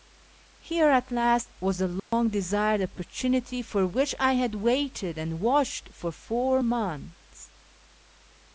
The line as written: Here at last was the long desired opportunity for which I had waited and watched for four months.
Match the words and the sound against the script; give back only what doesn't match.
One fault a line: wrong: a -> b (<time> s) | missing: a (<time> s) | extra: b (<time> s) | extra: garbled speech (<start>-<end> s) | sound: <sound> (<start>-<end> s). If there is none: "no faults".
sound: dropout (2.0-2.1 s)